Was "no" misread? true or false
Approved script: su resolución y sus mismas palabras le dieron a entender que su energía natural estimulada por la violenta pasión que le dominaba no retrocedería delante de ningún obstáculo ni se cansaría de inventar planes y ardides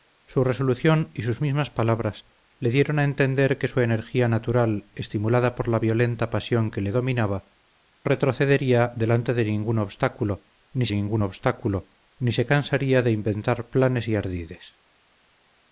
true